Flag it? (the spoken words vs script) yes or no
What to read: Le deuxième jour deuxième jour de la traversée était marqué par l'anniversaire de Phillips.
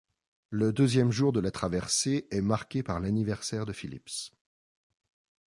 yes